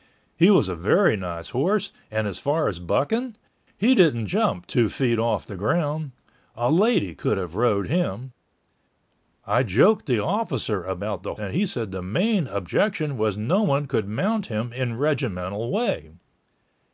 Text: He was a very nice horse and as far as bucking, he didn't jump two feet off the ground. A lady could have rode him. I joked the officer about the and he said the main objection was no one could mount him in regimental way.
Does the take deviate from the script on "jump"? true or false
false